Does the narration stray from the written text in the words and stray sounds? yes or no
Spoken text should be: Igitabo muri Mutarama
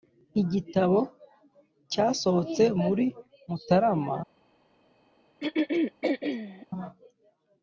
yes